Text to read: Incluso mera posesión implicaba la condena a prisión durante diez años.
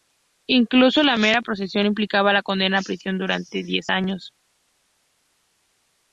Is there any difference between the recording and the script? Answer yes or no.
yes